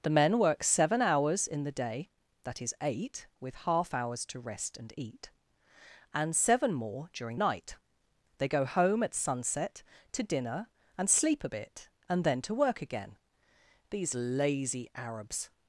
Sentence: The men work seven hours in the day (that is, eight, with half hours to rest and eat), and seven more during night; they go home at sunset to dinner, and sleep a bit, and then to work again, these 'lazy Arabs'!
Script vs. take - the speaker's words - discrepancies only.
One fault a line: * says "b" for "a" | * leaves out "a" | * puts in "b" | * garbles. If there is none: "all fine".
all fine